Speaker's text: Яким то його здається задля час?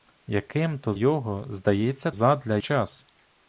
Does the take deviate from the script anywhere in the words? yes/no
no